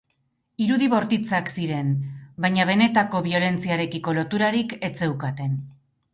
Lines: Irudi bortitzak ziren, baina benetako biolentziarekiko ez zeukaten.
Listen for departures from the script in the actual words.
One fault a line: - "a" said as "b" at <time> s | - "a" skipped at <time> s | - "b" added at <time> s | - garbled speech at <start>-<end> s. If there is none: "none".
- "loturarik" added at 4.2 s